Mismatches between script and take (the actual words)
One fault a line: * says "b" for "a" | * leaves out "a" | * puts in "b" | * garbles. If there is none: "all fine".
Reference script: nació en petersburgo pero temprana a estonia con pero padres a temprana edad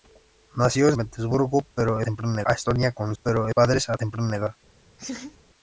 all fine